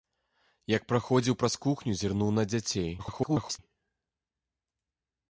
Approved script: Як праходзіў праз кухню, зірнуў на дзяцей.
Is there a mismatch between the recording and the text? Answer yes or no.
yes